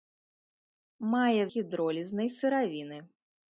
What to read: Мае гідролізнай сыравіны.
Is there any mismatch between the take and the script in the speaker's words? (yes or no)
no